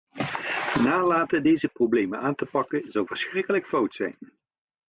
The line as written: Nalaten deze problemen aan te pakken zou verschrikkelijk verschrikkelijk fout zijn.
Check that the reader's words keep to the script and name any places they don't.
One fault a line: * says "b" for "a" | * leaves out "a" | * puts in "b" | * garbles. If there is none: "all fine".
* leaves out "verschrikkelijk"